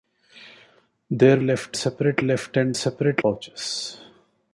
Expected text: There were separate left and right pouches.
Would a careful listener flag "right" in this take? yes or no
yes